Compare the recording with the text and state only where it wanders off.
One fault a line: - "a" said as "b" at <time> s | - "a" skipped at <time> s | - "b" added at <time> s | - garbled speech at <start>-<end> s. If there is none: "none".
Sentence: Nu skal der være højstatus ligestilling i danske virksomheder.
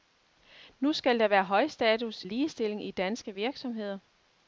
none